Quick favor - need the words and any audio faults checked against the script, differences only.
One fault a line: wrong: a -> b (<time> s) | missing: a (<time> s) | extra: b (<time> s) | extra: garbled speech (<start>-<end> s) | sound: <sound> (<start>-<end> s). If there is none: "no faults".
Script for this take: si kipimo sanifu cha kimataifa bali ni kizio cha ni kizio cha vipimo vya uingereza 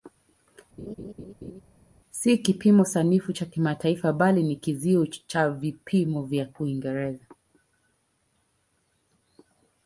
sound: laugh (0.8-1.6 s)
missing: ni kizio cha (5.5 s)